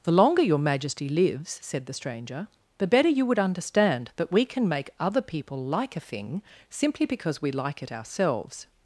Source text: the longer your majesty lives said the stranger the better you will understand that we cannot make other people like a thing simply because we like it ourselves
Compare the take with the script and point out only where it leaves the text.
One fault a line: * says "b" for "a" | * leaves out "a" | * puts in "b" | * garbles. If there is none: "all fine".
* says "would" for "will"
* says "can" for "cannot"